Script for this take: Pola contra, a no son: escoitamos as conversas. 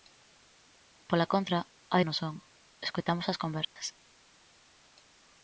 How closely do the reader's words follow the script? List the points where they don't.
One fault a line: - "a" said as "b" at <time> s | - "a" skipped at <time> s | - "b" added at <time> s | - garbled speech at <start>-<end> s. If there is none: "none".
none